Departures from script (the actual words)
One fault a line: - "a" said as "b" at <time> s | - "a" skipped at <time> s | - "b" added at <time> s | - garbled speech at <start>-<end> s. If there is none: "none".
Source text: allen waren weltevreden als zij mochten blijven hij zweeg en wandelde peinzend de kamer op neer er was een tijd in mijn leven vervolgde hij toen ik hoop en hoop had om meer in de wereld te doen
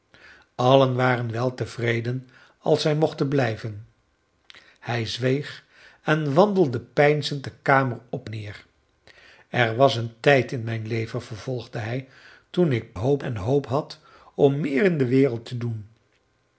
none